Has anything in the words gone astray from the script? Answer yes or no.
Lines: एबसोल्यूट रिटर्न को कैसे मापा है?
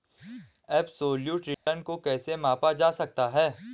yes